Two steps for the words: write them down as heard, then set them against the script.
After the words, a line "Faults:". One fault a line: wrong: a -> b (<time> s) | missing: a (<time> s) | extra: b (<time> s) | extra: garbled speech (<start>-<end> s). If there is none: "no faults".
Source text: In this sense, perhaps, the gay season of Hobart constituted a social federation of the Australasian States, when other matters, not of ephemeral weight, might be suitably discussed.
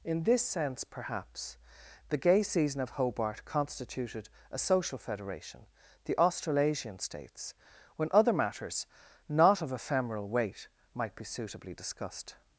In this sense, perhaps, the gay season of Hobart constituted a social federation the Australasian States, when other matters, not of ephemeral weight, might be suitably discussed.
Faults:
missing: of (5.7 s)